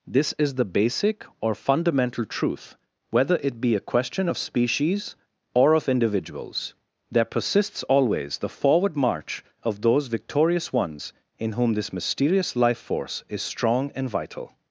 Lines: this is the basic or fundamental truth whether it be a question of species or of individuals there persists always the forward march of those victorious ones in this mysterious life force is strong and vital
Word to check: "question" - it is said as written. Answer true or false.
true